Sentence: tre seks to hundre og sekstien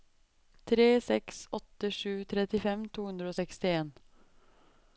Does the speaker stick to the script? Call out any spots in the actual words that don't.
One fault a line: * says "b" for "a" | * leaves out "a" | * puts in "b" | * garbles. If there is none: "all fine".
* puts in "åtte sju trettifem"